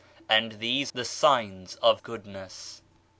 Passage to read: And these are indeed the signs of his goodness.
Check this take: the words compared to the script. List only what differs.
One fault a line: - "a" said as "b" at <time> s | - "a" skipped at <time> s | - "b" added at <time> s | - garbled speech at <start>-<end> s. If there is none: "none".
- "are indeed" skipped at 0.9 s
- "his" skipped at 2.0 s